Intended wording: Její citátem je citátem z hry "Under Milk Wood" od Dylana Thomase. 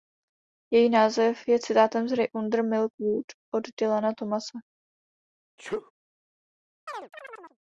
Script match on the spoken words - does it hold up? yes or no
no